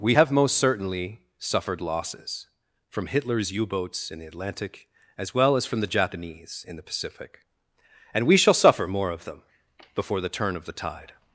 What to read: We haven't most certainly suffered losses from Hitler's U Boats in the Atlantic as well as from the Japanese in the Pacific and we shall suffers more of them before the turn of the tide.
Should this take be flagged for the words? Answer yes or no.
yes